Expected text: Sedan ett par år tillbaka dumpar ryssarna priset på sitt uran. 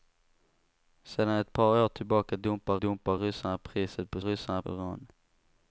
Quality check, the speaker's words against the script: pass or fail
fail